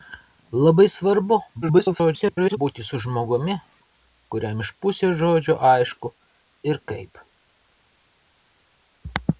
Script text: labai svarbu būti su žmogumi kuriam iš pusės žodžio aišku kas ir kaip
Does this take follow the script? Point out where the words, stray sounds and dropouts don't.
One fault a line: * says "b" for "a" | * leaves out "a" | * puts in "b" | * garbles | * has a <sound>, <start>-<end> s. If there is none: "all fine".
* garbles
* leaves out "kas"